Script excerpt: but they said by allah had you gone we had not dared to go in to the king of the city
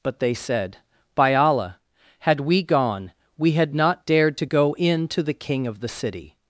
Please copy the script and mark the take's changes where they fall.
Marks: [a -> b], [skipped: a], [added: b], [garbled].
but they said by allah had [you -> we] gone we had not dared to go in to the king of the city